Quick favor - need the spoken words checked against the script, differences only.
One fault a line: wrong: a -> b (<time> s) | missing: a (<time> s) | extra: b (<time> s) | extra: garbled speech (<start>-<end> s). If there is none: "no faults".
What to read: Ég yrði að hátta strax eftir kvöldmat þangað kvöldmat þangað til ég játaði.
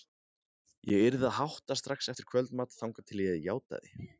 missing: kvöldmat þangað (3.1 s)